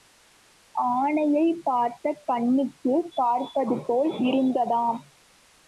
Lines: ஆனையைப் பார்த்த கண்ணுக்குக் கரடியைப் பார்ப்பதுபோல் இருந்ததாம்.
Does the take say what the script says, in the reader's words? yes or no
no